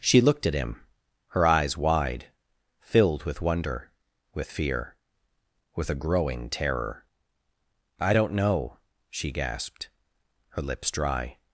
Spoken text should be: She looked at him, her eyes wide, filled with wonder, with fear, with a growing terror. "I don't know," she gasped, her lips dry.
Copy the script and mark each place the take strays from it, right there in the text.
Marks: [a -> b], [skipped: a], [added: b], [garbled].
She looked at him, her eyes wide, filled with wonder, with fear, with a growing terror. "I don't know," she gasped, her lips dry.